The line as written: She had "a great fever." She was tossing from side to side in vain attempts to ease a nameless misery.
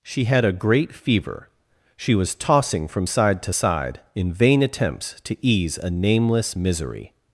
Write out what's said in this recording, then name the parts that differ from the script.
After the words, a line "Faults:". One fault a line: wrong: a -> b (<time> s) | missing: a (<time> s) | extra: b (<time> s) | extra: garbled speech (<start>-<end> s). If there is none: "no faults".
She had "a great fever." She was tossing from side to side in vain attempts to ease a nameless misery.
Faults:
no faults